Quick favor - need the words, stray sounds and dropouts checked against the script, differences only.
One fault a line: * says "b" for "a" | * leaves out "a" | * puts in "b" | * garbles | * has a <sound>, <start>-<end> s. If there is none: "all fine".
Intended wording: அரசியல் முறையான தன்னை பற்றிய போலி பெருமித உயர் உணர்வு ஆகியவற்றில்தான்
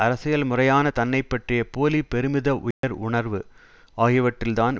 * has a dropout, 2.7-2.8 s